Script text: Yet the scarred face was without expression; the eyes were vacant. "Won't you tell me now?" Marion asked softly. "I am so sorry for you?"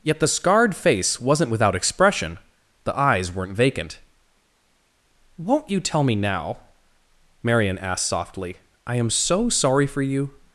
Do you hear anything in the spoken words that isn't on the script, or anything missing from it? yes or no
yes